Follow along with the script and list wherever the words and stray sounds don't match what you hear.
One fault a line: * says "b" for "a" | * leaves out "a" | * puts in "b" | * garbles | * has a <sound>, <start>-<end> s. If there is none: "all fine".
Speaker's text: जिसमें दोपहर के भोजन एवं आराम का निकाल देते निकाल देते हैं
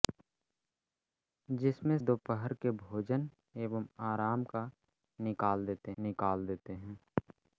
all fine